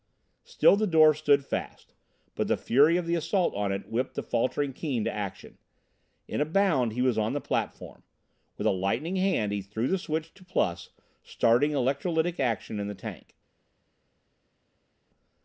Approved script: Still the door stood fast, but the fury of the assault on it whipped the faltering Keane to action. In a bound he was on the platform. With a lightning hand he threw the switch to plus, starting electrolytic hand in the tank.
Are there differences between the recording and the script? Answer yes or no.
yes